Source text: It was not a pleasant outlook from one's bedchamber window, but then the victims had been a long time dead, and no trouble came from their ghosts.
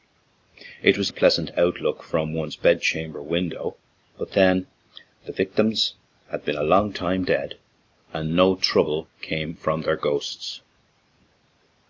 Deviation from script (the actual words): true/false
true